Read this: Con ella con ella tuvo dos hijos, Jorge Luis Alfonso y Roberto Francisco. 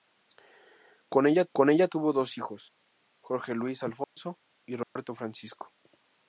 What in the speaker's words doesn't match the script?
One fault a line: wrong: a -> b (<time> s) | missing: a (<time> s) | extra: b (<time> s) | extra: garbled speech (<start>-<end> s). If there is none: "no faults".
no faults